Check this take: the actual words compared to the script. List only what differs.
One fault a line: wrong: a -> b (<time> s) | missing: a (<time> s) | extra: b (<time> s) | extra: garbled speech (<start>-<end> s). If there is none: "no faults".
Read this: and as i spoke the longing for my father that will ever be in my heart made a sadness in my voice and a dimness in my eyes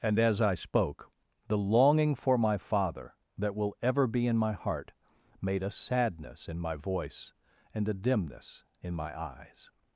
no faults